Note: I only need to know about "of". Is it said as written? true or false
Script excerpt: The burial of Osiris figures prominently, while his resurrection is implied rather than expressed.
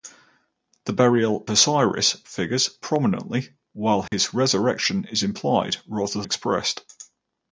false